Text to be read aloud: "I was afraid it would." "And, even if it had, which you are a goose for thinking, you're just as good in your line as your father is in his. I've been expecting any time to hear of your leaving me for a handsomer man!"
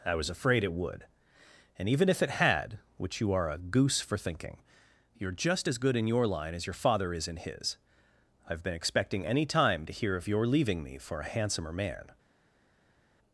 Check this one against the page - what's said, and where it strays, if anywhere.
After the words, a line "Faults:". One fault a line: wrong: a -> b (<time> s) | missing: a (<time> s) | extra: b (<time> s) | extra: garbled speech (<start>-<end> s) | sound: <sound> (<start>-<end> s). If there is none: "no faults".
"I was afraid it would." "And, even if it had, which you are a goose for thinking, you're just as good in your line as your father is in his. I've been expecting any time to hear of your leaving me for a handsomer man!"
Faults:
no faults